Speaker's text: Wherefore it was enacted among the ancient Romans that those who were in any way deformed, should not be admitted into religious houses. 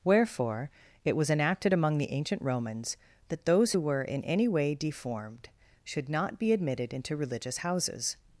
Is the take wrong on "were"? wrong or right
right